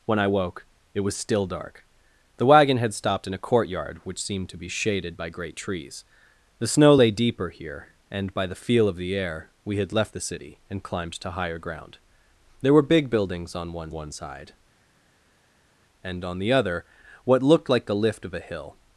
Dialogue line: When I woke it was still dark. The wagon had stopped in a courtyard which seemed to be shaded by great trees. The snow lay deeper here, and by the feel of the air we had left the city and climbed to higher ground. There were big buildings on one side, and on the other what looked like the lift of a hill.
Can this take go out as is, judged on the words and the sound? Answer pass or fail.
fail